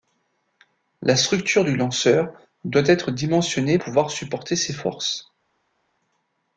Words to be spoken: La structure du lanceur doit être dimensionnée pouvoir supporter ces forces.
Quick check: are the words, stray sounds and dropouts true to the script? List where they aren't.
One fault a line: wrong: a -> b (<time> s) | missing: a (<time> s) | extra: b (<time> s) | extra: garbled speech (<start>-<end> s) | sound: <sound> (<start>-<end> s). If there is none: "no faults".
no faults